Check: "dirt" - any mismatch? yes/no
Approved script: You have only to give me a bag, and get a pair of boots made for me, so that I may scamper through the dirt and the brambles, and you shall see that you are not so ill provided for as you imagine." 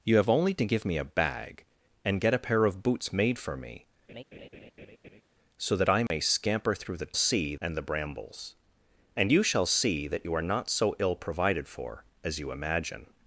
yes